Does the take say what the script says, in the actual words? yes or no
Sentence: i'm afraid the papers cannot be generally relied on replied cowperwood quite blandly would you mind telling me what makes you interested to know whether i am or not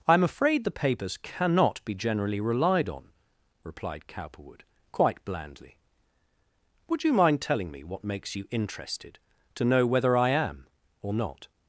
yes